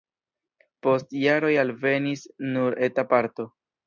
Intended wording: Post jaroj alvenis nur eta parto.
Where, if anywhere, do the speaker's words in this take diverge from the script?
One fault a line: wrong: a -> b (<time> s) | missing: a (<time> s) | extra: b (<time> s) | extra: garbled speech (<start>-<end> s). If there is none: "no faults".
no faults